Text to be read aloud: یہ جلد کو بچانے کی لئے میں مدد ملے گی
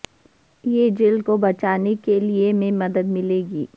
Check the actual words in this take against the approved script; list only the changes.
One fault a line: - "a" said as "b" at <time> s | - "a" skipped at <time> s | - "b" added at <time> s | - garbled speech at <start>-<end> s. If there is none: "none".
- "کی" said as "کے" at 2.0 s